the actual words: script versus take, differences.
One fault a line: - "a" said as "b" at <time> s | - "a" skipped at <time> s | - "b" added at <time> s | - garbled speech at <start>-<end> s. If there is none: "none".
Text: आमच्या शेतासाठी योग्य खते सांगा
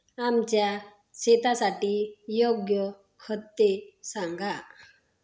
none